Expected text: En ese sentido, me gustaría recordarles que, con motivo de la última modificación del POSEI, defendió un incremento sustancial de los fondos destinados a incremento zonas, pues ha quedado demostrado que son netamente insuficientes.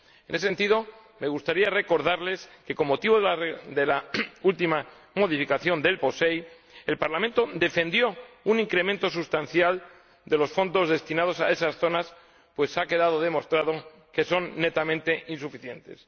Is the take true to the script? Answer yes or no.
no